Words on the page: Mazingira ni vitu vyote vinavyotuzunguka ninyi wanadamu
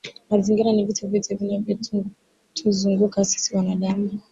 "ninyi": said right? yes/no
no